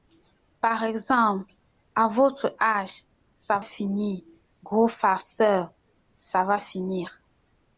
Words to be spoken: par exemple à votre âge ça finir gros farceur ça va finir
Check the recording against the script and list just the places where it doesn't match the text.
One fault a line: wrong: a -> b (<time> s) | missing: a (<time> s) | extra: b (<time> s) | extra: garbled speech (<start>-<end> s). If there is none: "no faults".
no faults